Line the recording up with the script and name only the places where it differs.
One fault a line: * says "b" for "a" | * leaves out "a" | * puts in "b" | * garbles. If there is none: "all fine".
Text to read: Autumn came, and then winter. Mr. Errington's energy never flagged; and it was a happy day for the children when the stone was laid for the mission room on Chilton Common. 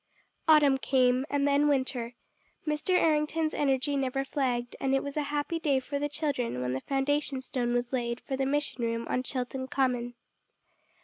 * puts in "foundation"